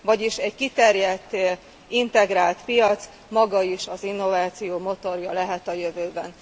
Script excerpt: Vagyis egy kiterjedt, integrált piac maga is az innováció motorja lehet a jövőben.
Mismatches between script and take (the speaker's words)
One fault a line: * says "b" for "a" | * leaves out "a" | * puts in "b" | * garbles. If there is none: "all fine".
all fine